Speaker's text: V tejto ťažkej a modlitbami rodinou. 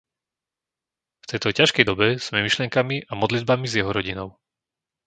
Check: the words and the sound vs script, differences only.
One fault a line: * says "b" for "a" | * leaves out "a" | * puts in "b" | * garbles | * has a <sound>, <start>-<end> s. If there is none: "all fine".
* puts in "dobe sme myšlienkami"
* puts in "s jeho"